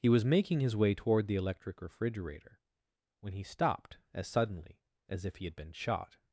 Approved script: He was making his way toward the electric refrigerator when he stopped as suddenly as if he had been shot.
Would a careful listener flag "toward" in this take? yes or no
no